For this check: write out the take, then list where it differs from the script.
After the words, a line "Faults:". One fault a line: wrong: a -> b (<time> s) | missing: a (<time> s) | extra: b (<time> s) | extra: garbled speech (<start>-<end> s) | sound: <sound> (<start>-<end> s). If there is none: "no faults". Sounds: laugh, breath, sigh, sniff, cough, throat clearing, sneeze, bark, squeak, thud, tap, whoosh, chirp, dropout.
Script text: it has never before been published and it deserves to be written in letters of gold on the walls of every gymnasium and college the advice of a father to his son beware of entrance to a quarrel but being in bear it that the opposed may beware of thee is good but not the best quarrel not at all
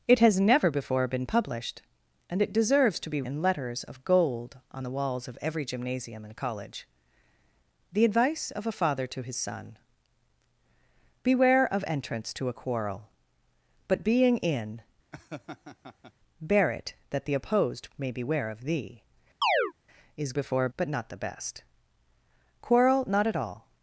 it has never before been published and it deserves to be in letters of gold on the walls of every gymnasium and college the advice of a father to his son beware of entrance to a quarrel but being in bear it that the opposed may beware of thee is before but not the best quarrel not at all
Faults:
missing: written (3.2 s)
sound: laugh (15.1-16.1 s)
sound: chirp (19.4-19.7 s)
wrong: good -> before (20.3 s)